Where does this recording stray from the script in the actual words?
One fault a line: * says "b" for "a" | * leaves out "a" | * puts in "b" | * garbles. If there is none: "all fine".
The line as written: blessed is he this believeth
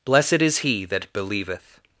* says "that" for "this"